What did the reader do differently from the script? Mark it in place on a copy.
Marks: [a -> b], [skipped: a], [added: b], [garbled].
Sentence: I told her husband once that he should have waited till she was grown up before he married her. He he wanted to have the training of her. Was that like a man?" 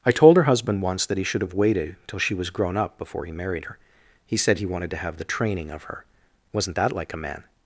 I told her husband once that he should have waited till she was grown up before he married her. He [added: said] he wanted to have the training of her. [Was -> Wasn't] that like a man?"